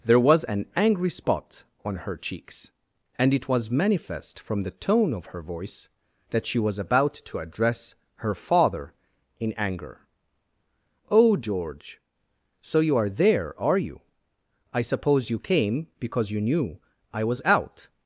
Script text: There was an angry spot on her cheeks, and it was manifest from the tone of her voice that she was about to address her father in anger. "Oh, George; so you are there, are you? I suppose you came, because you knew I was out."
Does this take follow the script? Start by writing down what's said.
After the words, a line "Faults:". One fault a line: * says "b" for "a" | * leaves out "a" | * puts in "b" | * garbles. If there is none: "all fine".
There was an angry spot on her cheeks, and it was manifest from the tone of her voice that she was about to address her father in anger. "Oh, George; so you are there, are you? I suppose you came, because you knew I was out."
Faults:
all fine